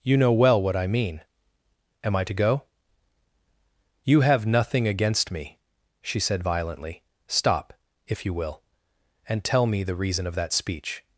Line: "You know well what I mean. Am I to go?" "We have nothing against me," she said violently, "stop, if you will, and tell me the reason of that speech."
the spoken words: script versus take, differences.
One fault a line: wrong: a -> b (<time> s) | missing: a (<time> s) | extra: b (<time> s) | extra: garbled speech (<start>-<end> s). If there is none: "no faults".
wrong: We -> You (4.0 s)